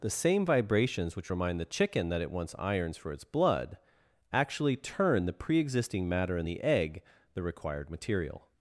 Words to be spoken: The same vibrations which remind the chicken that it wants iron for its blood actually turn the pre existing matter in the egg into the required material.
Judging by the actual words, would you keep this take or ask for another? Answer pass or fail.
fail